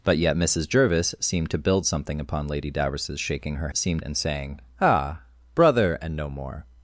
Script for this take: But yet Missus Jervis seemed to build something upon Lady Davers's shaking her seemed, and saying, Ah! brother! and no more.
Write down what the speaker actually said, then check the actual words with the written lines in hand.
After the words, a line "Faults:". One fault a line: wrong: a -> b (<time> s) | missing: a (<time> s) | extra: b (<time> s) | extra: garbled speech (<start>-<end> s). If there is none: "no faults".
But yet Missus Jervis seemed to build something upon Lady Davers's shaking her seemed, and saying, Ah! brother! and no more.
Faults:
no faults